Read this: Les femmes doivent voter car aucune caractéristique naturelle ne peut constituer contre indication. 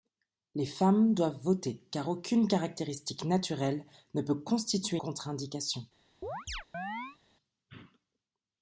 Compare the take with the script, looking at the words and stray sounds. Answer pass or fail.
fail